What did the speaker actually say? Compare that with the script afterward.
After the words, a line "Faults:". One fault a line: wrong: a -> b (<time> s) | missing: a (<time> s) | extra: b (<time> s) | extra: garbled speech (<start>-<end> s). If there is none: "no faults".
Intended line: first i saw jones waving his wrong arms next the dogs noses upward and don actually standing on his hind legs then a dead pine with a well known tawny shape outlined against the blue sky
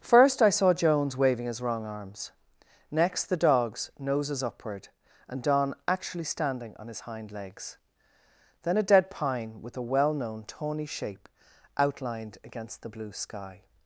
first i saw jones waving his wrong arms next the dogs noses upward and don actually standing on his hind legs then a dead pine with a well known tawny shape outlined against the blue sky
Faults:
no faults